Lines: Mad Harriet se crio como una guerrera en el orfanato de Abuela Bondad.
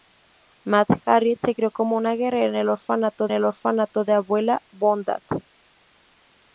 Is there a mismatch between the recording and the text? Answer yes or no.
yes